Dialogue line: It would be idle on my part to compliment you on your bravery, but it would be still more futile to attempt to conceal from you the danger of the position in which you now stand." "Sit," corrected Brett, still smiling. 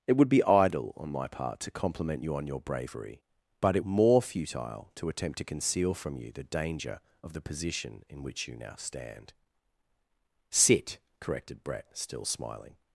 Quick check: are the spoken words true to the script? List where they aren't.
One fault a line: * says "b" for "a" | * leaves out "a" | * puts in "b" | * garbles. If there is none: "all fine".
* leaves out "would be still"